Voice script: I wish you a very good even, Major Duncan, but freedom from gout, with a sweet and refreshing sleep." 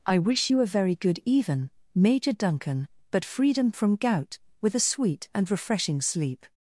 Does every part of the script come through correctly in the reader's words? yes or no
yes